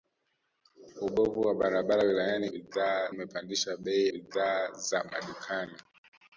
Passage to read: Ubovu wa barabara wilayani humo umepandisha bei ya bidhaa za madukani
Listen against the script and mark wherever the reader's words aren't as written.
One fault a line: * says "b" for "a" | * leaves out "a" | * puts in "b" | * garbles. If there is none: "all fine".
* says "bidhaa" for "humo"
* leaves out "ya"